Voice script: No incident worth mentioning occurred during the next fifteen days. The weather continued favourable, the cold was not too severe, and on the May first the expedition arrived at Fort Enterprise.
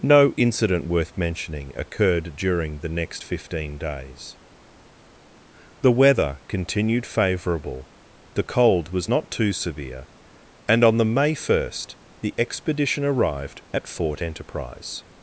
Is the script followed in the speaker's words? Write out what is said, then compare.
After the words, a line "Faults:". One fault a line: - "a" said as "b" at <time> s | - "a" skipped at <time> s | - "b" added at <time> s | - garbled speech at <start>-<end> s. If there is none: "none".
No incident worth mentioning occurred during the next fifteen days. The weather continued favourable, the cold was not too severe, and on the May first the expedition arrived at Fort Enterprise.
Faults:
none